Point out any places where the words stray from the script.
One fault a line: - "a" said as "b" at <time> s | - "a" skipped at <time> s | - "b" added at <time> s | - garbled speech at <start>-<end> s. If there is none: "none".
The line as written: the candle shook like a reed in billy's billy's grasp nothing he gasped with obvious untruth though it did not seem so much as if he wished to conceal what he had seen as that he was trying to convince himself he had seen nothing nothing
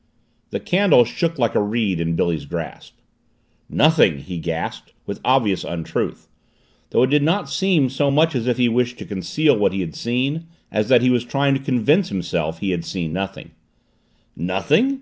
- "billy's" skipped at 2.5 s